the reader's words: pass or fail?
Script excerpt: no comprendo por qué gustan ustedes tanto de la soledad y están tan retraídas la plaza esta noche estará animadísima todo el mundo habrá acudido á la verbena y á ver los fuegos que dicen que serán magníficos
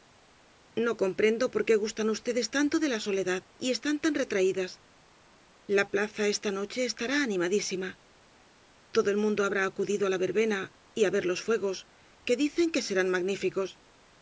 pass